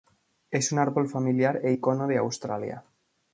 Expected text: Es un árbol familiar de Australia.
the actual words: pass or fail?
fail